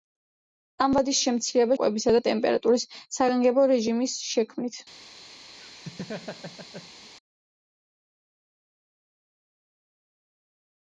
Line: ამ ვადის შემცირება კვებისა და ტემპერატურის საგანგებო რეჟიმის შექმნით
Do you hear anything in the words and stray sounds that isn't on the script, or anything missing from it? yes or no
yes